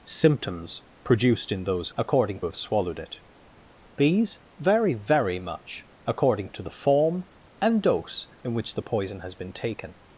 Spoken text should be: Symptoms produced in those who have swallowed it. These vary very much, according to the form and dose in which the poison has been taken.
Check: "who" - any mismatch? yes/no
yes